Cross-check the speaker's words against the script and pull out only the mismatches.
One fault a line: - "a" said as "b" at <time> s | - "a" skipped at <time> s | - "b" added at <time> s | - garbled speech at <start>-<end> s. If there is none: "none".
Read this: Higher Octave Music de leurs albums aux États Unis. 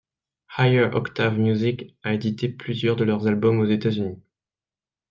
- "a édité plusieurs" added at 2.0 s